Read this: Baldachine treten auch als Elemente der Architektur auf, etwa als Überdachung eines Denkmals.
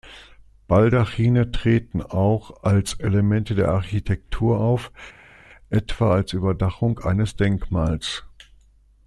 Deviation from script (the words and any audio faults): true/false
false